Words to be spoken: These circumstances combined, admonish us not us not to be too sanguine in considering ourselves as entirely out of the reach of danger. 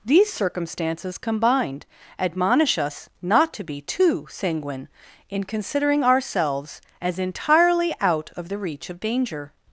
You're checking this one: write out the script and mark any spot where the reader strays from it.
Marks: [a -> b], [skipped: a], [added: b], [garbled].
These circumstances combined, admonish us not [skipped: us not] to be too sanguine in considering ourselves as entirely out of the reach of danger.